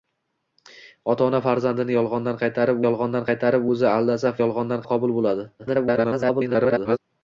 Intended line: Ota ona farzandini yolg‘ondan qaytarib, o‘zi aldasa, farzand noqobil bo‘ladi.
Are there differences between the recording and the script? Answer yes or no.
yes